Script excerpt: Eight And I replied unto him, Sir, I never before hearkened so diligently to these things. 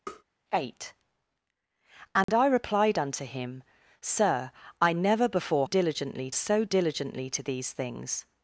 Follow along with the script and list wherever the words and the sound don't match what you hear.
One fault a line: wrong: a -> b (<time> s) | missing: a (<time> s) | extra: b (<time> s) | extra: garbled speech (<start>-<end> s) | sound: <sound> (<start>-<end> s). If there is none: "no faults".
sound: tap (0.1-0.2 s)
sound: dropout (2.2-2.3 s)
wrong: hearkened -> diligently (5.6 s)